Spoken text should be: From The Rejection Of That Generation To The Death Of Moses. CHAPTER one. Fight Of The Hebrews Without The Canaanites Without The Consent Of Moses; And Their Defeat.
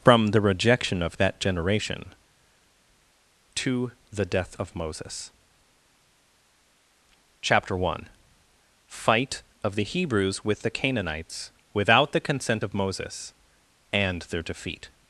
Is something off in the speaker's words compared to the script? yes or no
yes